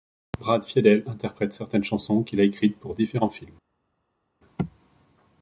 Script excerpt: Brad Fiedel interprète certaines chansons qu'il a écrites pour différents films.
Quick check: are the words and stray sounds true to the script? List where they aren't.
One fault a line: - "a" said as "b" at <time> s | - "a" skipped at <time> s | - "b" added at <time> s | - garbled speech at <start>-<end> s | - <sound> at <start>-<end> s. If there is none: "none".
none